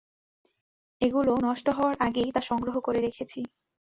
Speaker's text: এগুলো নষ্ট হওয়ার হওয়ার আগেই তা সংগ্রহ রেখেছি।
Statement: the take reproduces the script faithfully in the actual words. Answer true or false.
false